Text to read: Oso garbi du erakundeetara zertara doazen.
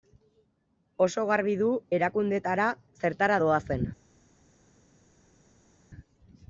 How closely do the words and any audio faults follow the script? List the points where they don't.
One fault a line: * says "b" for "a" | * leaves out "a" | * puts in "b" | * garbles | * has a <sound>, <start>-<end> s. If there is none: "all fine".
all fine